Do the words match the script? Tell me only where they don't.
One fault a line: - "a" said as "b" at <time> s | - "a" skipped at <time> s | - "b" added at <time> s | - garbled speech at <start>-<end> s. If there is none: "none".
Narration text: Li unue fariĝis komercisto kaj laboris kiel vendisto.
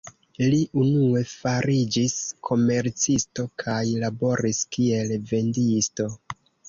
none